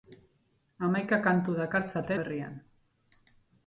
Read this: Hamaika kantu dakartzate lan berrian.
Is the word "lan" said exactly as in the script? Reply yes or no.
no